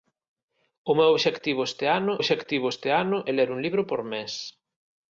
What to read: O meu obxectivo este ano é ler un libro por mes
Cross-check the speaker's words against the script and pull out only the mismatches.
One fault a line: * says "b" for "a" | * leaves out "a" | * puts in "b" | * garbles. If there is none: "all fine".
* puts in "obxectivo este ano"